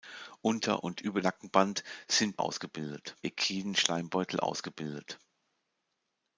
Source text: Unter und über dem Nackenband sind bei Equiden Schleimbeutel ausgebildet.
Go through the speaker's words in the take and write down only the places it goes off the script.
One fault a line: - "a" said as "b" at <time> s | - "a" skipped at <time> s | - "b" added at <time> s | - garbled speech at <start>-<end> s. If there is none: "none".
- "dem" skipped at 1.2 s
- "bei" said as "ausgebildet" at 2.4 s